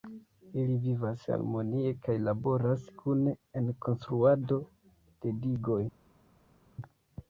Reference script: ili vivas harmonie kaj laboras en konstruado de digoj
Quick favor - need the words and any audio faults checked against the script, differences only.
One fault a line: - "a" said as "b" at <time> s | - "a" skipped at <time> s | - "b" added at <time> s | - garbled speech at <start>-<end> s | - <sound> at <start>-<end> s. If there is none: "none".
- "kune" added at 3.0 s